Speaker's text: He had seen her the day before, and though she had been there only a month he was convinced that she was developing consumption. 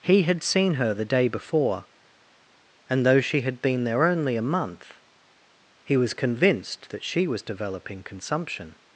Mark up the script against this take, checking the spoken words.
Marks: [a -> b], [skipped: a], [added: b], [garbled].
He had seen her the day before, and though she had been there only a month he was convinced that she was developing consumption.